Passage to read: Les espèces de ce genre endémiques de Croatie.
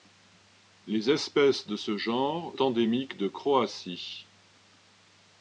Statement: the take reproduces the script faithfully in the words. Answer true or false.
true